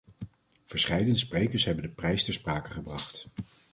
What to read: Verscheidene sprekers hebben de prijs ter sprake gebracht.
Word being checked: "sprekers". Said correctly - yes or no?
yes